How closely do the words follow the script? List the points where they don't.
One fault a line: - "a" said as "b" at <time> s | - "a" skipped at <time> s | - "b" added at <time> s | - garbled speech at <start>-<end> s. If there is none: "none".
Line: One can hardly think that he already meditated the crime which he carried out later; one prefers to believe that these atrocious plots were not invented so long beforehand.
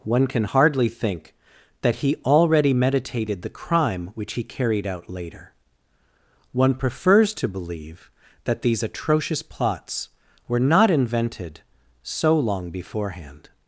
none